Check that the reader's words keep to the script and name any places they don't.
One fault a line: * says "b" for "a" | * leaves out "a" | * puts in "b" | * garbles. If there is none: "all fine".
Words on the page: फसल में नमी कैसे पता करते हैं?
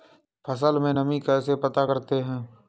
all fine